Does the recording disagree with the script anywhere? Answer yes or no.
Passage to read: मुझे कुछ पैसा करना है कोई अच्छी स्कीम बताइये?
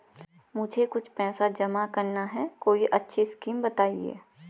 yes